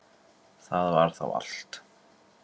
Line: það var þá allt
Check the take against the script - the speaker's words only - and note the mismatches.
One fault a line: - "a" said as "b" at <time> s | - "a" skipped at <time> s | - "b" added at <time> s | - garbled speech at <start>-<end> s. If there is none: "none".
none